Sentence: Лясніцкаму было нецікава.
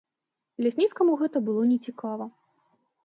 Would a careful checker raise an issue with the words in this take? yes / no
yes